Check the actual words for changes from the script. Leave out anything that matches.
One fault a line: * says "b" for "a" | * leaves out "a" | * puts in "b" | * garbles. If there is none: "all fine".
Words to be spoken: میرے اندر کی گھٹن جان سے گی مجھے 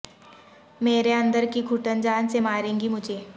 * puts in "مارے"